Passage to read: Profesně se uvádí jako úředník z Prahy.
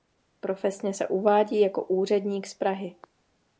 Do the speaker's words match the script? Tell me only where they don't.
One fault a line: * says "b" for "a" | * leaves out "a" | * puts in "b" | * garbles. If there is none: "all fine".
all fine